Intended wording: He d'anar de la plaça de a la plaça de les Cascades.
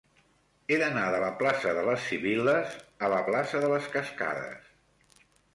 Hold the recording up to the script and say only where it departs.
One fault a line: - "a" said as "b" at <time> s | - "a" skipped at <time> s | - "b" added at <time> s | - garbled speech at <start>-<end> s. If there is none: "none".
- "les Sibil·les" added at 1.9 s